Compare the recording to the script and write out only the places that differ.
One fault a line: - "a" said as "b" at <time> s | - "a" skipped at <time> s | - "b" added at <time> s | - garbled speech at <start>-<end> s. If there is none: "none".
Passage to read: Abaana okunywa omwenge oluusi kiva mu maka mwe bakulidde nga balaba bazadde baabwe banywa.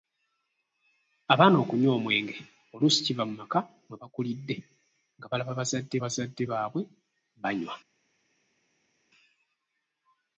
- "bazadde" added at 6.0 s